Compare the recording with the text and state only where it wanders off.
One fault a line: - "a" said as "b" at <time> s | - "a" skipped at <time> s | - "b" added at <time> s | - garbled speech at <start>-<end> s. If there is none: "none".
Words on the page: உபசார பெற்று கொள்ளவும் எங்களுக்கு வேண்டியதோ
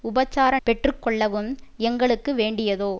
none